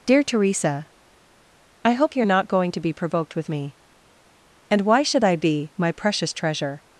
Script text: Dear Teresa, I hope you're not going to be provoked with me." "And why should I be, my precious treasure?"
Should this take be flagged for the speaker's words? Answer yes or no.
no